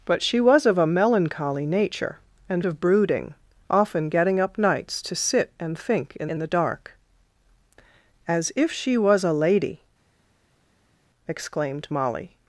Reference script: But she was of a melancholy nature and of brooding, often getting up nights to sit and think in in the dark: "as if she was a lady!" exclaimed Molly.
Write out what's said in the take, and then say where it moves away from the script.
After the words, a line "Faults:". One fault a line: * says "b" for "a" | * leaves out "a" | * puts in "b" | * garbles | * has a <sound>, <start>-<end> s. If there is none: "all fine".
But she was of a melancholy nature and of brooding, often getting up nights to sit and think in in the dark: "as if she was a lady!" exclaimed Molly.
Faults:
all fine